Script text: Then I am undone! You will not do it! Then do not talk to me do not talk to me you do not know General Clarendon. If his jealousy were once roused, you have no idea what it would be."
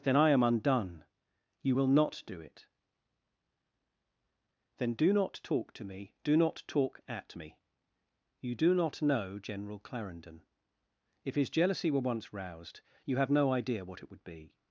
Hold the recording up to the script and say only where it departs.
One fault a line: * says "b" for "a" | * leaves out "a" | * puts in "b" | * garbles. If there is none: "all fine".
* says "at" for "to"